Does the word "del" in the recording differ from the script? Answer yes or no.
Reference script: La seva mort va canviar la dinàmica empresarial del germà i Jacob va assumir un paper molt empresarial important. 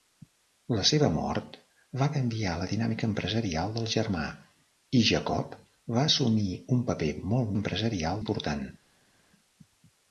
no